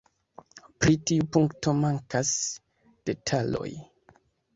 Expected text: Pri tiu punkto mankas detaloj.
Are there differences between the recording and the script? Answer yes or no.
no